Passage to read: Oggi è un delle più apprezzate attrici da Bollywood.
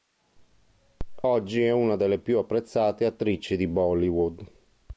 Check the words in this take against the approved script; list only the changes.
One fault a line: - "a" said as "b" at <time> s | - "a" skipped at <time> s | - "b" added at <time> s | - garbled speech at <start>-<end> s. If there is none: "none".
- "un" said as "una" at 1.7 s
- "da" said as "di" at 3.5 s